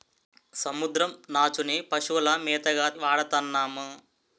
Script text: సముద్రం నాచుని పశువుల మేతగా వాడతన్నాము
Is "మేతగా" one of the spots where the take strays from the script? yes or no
no